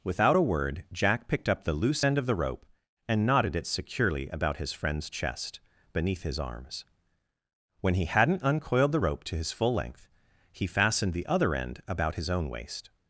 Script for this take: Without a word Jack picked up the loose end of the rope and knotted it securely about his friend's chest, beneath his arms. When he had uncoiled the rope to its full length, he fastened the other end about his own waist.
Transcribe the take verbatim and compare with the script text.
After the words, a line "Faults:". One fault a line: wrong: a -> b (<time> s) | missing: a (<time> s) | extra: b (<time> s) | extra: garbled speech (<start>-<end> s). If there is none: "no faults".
Without a word Jack picked up the loose end of the rope and knotted it securely about his friend's chest, beneath his arms. When he hadn't uncoiled the rope to his full length, he fastened the other end about his own waist.
Faults:
wrong: had -> hadn't (8.1 s)
wrong: its -> his (9.4 s)